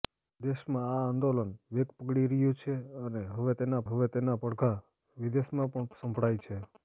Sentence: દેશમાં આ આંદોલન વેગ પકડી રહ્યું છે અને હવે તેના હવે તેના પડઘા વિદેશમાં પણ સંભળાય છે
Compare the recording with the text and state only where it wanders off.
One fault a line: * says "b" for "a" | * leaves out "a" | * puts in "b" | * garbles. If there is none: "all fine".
all fine